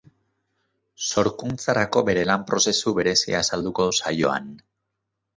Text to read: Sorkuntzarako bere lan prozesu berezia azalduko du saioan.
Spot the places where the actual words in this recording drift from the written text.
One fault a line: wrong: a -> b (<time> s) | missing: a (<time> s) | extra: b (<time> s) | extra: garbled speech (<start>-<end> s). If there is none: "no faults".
no faults